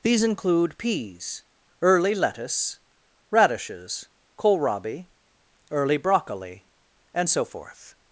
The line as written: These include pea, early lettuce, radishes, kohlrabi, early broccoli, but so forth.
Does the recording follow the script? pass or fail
fail